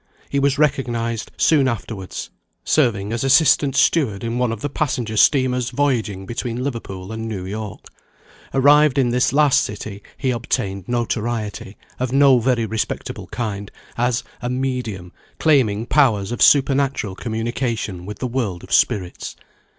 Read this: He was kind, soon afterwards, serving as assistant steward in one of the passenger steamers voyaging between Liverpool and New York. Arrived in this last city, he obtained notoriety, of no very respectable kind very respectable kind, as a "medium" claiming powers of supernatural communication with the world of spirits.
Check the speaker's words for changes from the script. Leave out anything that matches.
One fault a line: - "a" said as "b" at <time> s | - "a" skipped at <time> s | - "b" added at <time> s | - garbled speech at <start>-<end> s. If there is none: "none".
- "kind" said as "recognised" at 0.6 s
- "very respectable kind" skipped at 13.7 s